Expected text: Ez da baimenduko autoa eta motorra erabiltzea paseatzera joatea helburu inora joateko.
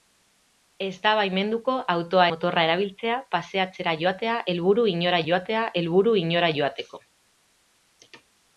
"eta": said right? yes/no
no